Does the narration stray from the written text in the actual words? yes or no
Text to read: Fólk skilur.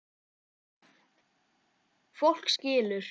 no